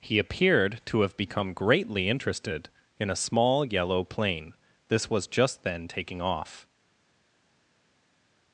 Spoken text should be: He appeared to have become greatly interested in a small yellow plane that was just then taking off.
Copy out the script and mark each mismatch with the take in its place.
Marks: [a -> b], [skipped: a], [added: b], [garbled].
He appeared to have become greatly interested in a small yellow plane [that -> this] was just then taking off.